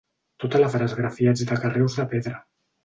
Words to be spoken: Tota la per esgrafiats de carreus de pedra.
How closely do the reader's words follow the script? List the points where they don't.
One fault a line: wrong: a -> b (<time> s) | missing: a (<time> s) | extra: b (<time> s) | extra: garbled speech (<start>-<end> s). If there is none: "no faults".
no faults